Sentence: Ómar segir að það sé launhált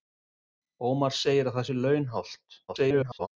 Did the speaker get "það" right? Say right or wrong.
right